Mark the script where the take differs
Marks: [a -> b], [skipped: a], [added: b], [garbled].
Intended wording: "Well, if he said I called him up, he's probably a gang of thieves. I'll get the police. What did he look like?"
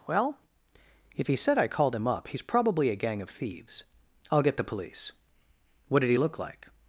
"Well, if he said I called him up, he's probably a gang of thieves. I'll get the police. What did he look like?"